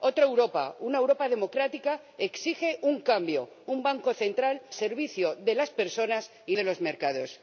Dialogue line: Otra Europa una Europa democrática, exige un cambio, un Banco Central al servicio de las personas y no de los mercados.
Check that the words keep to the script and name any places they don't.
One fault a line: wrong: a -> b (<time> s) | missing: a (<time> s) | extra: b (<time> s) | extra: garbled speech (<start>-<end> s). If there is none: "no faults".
missing: al (4.6 s)
missing: no (6.6 s)